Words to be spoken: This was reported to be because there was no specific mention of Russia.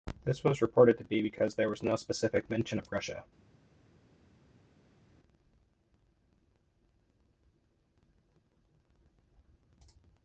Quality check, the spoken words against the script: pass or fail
pass